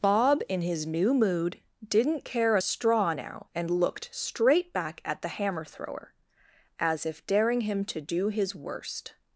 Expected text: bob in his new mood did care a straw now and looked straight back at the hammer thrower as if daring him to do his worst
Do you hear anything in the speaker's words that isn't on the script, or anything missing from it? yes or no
yes